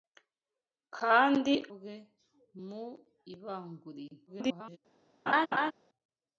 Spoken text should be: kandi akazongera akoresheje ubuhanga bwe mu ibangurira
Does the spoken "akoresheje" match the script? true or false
false